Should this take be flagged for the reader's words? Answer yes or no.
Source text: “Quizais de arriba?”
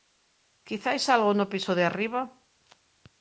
yes